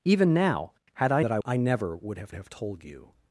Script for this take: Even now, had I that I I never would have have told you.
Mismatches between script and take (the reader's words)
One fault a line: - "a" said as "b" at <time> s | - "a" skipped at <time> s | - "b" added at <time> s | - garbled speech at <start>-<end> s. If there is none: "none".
none